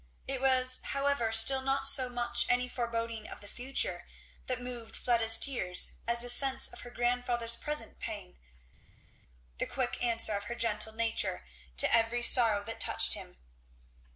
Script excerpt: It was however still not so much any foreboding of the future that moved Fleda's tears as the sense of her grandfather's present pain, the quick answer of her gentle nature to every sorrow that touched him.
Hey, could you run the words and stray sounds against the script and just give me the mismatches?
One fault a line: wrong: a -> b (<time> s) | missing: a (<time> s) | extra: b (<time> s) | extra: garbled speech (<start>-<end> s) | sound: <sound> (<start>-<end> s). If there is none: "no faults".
no faults